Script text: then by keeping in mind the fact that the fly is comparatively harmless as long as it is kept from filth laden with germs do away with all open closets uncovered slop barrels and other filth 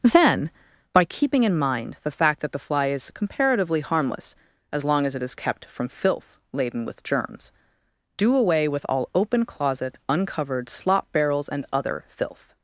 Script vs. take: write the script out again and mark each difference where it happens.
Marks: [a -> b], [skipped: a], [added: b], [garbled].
then by keeping in mind the fact that the fly is comparatively harmless as long as it is kept from filth laden with germs do away with all open [closets -> closet] uncovered slop barrels and other filth